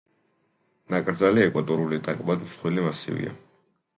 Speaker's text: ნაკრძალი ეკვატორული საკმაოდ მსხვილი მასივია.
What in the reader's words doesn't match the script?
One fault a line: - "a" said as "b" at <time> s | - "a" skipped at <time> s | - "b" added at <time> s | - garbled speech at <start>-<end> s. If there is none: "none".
none